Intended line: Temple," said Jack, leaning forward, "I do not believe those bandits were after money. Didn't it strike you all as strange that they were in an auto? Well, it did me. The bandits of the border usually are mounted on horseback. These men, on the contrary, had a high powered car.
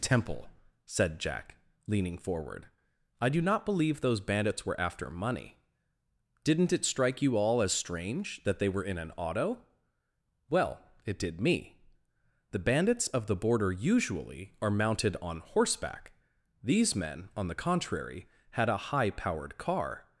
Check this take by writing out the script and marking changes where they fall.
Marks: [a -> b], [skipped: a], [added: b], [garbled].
Temple," said Jack, leaning forward, "I do not believe those bandits were after money. Didn't it strike you all as strange that they were in an auto? Well, it did me. The bandits of the border usually are mounted on horseback. These men, on the contrary, had a high powered car.